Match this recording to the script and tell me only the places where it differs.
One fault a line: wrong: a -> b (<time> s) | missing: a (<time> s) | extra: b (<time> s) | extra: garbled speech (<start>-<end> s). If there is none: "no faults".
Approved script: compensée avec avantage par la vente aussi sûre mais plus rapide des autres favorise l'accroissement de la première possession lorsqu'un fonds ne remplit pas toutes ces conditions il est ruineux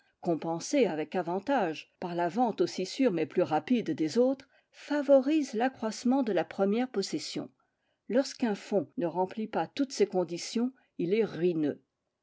no faults